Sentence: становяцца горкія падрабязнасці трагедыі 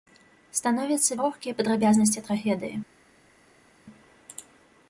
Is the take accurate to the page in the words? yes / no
yes